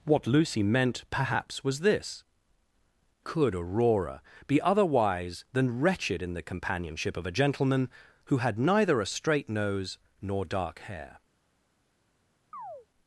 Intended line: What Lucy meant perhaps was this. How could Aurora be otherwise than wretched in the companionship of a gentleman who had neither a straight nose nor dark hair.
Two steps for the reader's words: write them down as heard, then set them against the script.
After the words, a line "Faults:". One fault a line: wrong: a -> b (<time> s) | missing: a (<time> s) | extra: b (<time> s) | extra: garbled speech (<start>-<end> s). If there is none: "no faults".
What Lucy meant perhaps was this. Could Aurora be otherwise than wretched in the companionship of a gentleman who had neither a straight nose nor dark hair.
Faults:
missing: How (2.2 s)